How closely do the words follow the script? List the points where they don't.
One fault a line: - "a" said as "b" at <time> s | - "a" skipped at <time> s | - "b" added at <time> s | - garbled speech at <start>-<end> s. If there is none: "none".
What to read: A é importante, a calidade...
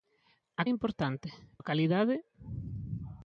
none